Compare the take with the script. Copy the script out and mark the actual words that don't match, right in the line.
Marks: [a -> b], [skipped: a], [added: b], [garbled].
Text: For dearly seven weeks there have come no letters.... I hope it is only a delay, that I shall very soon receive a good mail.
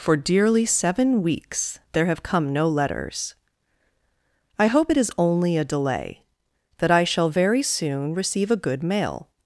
For dearly seven weeks there have come no letters.... I hope it is only a delay, that I shall very soon receive a good mail.